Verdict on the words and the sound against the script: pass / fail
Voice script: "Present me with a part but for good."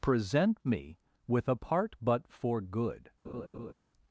fail